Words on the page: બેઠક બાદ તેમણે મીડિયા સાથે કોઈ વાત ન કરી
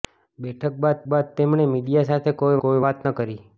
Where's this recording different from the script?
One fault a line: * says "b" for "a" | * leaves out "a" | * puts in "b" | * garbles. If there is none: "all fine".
* puts in "બાદ"
* puts in "કોઈ"